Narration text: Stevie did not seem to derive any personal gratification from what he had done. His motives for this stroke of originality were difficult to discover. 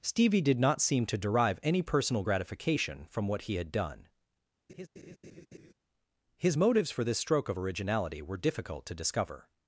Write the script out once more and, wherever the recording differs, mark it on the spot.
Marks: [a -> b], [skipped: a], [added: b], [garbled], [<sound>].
Stevie did not seem to derive any personal gratification from what he had done. [laugh] His motives for this stroke of originality were difficult to discover.